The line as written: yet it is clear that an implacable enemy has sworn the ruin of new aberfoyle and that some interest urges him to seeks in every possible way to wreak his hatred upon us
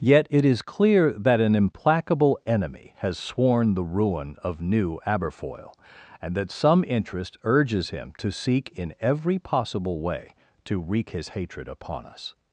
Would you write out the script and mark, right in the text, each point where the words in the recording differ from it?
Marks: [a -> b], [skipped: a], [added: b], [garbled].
yet it is clear that an implacable enemy has sworn the ruin of new aberfoyle and that some interest urges him to [seeks -> seek] in every possible way to wreak his hatred upon us